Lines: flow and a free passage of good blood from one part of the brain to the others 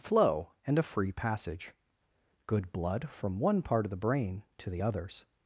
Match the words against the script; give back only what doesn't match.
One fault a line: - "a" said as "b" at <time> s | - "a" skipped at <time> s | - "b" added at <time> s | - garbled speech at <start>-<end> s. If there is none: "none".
- "of" skipped at 1.7 s